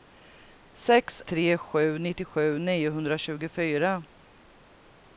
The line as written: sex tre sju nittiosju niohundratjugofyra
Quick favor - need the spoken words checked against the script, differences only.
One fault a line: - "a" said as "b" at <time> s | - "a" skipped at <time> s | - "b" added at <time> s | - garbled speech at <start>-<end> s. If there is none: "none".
none